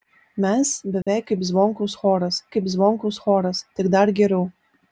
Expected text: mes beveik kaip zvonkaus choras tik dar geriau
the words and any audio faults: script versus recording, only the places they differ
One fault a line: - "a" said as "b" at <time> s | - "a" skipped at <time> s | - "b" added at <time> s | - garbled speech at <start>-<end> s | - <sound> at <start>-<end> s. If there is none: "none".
- dropout at 1.0-1.1 s
- "kaip zvonkaus choras" added at 2.5 s